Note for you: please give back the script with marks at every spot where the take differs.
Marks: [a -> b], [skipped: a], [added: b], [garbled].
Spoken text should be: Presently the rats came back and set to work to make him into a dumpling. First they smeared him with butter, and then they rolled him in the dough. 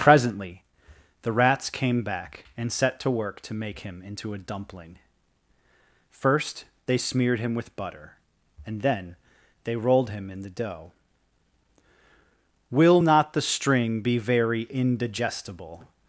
Presently the rats came back and set to work to make him into a dumpling. First they smeared him with butter, and then they rolled him in the dough. [added: Will not the string be very indigestible]